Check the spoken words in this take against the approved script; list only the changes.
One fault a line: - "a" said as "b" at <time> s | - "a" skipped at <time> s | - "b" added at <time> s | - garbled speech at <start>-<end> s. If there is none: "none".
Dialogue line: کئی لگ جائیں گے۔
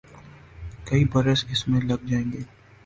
- "برس اس میں" added at 1.1 s